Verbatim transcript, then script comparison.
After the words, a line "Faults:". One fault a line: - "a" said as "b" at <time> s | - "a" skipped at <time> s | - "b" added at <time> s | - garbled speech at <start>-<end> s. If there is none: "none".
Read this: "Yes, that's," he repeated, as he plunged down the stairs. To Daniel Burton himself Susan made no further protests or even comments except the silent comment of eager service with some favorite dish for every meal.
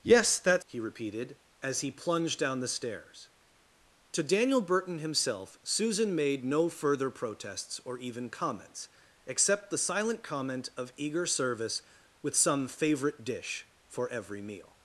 "Yes, that's," he repeated, as he plunged down the stairs. To Daniel Burton himself Susan made no further protests or even comments except the silent comment of eager service with some favorite dish for every meal.
Faults:
none